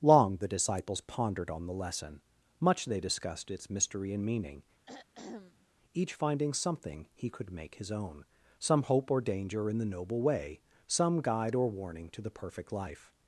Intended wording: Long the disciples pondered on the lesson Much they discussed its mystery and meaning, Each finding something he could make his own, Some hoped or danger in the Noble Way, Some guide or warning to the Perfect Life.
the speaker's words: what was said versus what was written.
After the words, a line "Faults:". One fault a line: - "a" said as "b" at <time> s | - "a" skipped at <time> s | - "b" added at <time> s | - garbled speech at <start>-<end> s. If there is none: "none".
Long the disciples pondered on the lesson Much they discussed its mystery and meaning, Each finding something he could make his own, Some hope or danger in the Noble Way, Some guide or warning to the Perfect Life.
Faults:
- "hoped" said as "hope" at 8.8 s